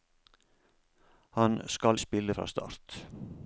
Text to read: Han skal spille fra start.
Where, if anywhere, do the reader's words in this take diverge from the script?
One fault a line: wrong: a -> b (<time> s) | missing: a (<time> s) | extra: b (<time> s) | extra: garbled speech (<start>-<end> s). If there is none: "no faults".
no faults